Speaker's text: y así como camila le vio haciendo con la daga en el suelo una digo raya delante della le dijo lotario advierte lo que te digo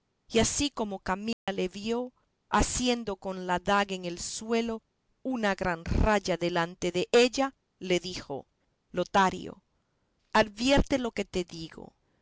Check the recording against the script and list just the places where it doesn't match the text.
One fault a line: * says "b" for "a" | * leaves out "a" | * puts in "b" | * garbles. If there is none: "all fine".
* says "gran" for "digo"